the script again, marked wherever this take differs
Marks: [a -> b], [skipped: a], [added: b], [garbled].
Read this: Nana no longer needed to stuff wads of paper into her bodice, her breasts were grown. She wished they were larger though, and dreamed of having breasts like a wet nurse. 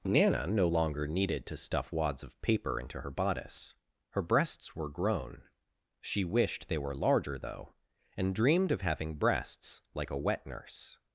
Nana no longer needed to stuff wads of paper into her bodice, her breasts were grown. She wished they were larger though, and dreamed of having breasts like a wet nurse.